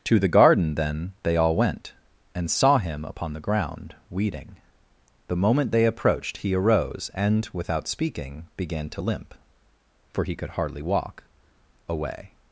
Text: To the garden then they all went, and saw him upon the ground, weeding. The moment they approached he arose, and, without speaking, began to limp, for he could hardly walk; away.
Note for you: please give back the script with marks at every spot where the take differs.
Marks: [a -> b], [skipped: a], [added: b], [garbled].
To the garden then they all went, and saw him upon the ground, weeding. The moment they approached he arose, and, without speaking, began to limp, for he could hardly walk; away.